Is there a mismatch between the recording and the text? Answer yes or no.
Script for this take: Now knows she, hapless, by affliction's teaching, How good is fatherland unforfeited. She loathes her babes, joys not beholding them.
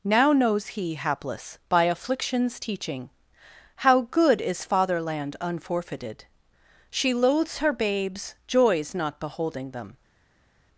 yes